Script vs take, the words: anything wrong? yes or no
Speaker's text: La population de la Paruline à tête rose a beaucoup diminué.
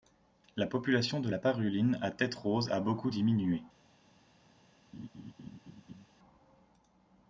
no